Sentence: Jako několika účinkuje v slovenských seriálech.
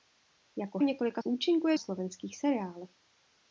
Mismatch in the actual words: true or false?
false